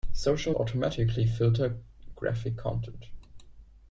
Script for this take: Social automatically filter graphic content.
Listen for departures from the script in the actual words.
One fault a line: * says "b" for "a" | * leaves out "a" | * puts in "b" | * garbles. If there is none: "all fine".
all fine